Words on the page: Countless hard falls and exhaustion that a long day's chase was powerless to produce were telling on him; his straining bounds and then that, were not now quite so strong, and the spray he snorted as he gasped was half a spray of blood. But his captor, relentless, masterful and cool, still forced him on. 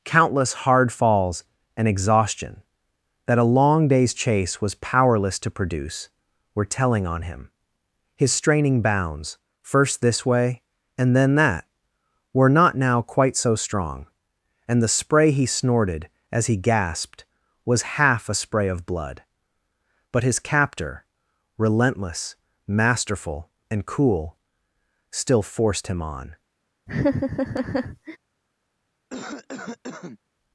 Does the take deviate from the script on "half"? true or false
false